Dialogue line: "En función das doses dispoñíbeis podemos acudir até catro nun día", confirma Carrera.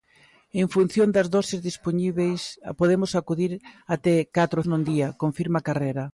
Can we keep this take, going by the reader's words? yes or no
yes